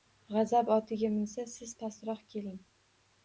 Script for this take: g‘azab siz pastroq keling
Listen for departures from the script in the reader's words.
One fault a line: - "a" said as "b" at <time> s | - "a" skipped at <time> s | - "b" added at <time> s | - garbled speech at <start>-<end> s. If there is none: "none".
- "otiga minsa" added at 0.8 s